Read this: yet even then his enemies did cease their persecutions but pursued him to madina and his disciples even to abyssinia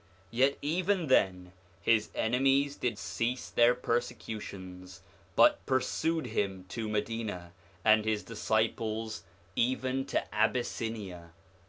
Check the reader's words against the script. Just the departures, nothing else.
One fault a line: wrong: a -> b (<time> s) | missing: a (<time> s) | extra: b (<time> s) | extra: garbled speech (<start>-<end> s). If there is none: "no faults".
no faults